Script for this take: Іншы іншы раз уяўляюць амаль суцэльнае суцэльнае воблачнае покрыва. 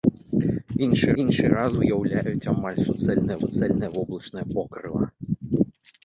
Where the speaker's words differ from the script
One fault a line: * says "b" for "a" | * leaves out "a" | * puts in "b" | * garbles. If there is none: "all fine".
all fine